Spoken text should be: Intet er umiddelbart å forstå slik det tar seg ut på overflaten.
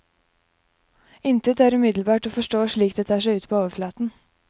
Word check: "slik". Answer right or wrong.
right